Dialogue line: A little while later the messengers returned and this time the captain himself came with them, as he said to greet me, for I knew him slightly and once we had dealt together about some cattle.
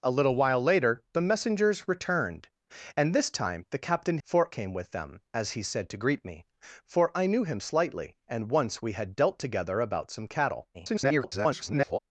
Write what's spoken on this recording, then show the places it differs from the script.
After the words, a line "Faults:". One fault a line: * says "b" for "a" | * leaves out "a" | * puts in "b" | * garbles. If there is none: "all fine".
A little while later the messengers returned and this time the captain for came with them, as he said to greet me, for I knew him slightly and once we had dealt together about some cattle. [garbled]
Faults:
* says "for" for "himself"
* garbles